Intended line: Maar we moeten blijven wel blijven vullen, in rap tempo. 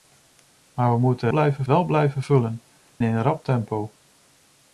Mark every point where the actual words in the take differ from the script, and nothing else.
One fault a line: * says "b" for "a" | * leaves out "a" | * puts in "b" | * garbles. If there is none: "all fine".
all fine